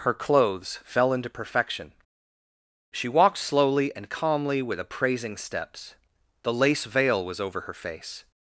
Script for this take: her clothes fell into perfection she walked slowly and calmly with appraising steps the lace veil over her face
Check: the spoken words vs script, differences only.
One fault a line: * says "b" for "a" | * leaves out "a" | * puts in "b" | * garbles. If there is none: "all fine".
* puts in "was"